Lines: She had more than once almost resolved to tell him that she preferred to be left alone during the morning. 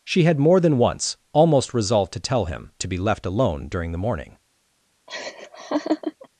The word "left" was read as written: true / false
true